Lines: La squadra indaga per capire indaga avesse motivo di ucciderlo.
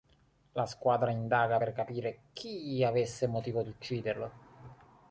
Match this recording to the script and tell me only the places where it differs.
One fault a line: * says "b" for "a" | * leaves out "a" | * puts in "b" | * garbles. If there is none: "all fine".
* says "chi" for "indaga"